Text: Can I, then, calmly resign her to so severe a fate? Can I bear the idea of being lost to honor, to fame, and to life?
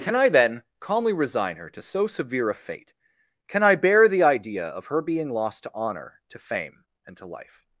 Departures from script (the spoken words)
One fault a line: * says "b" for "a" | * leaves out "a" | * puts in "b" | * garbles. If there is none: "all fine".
* puts in "her"